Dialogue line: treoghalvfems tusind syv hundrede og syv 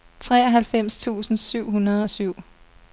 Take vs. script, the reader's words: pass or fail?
pass